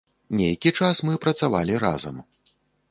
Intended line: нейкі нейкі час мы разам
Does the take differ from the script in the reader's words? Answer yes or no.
yes